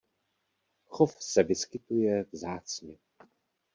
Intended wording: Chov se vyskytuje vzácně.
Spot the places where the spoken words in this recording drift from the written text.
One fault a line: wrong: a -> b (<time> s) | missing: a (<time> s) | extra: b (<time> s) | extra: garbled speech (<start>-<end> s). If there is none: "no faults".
no faults